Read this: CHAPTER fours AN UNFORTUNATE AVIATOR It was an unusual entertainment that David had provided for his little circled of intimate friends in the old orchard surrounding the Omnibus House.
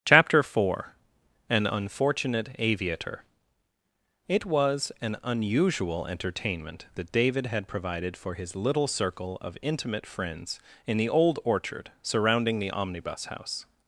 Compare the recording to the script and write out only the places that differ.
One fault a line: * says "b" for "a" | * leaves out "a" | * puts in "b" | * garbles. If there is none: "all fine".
* says "four" for "fours"
* says "circle" for "circled"